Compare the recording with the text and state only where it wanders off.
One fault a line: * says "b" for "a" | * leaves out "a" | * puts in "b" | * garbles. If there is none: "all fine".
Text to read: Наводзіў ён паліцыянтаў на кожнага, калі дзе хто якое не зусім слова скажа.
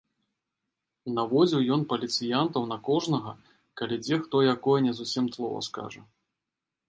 all fine